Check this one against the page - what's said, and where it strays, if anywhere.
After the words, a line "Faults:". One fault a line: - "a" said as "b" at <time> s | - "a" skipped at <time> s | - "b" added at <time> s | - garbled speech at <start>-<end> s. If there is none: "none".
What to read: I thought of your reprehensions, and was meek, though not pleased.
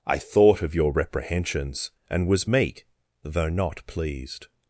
I thought of your reprehensions, and was meek, though not pleased.
Faults:
none